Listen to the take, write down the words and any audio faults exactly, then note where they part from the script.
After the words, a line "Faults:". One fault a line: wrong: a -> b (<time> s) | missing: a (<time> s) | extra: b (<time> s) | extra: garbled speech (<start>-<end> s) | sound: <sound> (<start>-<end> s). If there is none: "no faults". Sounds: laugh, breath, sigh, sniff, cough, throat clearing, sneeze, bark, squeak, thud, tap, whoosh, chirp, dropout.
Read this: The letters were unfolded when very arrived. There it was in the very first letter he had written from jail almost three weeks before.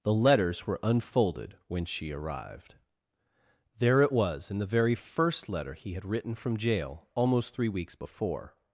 The letters were unfolded when she arrived. There it was in the very first letter he had written from jail almost three weeks before.
Faults:
wrong: very -> she (1.8 s)